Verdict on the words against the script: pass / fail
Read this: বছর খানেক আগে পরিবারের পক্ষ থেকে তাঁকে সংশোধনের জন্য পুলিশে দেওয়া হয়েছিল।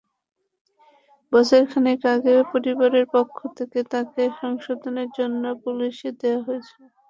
pass